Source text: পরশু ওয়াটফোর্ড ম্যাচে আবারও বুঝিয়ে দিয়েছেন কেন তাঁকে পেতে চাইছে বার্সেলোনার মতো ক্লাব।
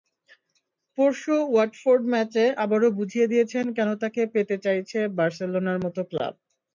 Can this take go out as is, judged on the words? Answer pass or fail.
pass